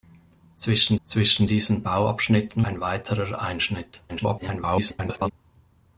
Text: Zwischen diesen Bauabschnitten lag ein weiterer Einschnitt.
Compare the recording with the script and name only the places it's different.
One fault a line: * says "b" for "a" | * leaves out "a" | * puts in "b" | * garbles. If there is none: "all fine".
* puts in "zwischen"
* leaves out "lag"
* garbles